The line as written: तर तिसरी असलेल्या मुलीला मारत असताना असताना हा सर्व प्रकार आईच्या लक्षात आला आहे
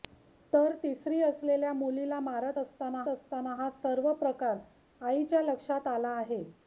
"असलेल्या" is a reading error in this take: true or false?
false